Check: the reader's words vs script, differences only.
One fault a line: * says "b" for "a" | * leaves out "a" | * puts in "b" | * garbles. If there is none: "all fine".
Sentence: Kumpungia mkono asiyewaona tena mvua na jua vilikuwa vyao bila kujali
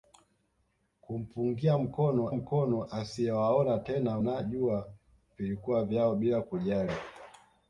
* puts in "mkono"
* leaves out "mvua"